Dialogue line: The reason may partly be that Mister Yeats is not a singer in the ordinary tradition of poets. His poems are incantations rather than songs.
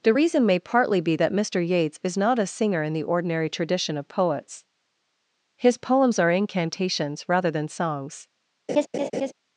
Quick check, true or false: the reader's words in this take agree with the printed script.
true